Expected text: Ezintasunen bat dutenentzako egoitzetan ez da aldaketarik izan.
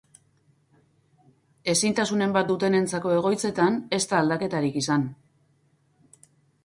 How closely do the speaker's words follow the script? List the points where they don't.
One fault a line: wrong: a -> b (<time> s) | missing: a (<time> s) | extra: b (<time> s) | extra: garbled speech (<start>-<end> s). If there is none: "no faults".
no faults